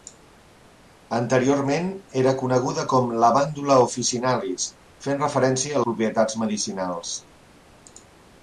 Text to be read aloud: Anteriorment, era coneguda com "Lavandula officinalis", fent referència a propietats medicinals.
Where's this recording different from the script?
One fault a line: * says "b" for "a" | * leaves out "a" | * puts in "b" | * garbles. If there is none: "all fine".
all fine